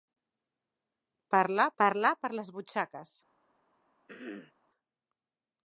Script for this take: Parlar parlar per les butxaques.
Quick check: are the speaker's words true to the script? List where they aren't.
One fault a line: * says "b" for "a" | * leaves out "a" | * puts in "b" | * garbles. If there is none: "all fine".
all fine